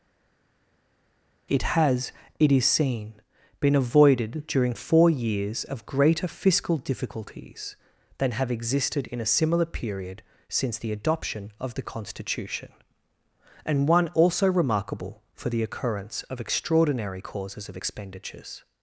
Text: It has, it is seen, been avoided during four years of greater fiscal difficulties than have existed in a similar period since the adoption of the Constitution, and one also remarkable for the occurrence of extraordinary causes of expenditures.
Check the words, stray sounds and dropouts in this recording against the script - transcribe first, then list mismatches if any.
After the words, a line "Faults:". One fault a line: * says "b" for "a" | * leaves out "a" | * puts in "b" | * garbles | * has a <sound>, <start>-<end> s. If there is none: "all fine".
It has, it is seen, been avoided during four years of greater fiscal difficulties than have existed in a similar period since the adoption of the Constitution, and one also remarkable for the occurrence of extraordinary causes of expenditures.
Faults:
all fine